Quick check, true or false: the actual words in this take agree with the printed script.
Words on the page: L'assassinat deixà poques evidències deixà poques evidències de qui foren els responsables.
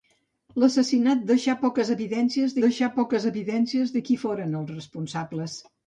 true